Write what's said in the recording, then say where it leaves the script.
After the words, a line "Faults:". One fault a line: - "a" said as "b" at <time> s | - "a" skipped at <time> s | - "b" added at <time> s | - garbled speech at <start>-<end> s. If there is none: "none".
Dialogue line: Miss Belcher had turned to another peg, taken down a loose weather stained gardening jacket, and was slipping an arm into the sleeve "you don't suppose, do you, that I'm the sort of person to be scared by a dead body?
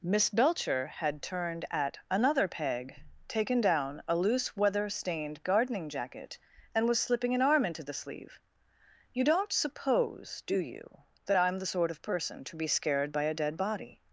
Miss Belcher had turned at another peg, taken down a loose weather stained gardening jacket, and was slipping an arm into the sleeve "you don't suppose, do you, that I'm the sort of person to be scared by a dead body?
Faults:
- "to" said as "at" at 1.7 s